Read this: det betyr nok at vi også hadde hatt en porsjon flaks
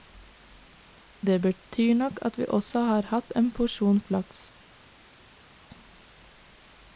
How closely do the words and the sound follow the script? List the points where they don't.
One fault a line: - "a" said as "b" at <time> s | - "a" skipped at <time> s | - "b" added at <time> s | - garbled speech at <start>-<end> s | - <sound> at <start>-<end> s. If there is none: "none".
- "hadde" said as "har" at 2.9 s